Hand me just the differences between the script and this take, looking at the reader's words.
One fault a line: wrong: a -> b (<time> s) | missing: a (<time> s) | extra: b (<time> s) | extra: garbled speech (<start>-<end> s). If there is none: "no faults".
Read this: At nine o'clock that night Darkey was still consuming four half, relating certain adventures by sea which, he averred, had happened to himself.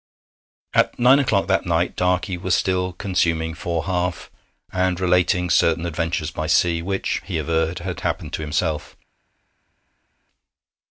extra: and (4.7 s)